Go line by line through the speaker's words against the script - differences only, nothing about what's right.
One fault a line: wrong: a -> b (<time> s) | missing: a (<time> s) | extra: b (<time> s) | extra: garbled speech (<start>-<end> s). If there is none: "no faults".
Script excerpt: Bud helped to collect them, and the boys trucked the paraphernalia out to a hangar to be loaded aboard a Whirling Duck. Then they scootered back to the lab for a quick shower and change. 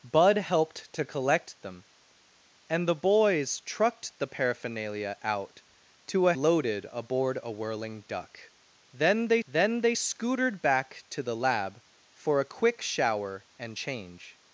missing: hangar to be (6.3 s)
extra: then they (9.5 s)